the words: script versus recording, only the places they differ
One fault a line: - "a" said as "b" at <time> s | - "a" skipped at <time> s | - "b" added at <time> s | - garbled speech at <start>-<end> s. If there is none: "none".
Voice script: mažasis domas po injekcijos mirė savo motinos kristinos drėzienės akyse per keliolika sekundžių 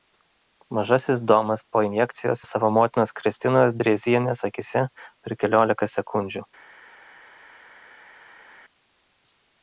- "mirė" skipped at 2.4 s